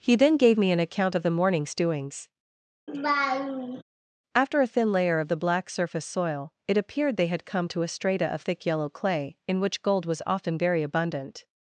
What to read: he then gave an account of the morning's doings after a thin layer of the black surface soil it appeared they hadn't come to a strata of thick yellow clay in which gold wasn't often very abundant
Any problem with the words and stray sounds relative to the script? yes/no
yes